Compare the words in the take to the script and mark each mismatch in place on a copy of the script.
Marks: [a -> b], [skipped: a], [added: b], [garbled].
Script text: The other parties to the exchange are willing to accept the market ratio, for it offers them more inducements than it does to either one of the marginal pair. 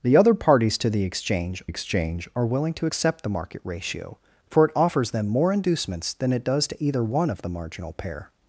The other parties to the exchange [added: exchange] are willing to accept the market ratio, for it offers them more inducements than it does to either one of the marginal pair.